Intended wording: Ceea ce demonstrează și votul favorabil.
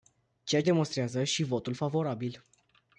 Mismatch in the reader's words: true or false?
true